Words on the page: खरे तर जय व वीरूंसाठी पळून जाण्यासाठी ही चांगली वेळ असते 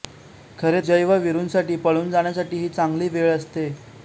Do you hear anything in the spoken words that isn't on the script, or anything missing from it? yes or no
yes